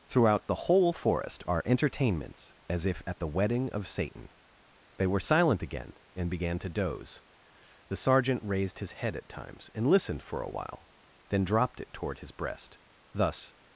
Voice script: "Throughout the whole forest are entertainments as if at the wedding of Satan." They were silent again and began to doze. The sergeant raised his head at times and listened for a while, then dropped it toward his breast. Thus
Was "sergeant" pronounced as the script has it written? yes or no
yes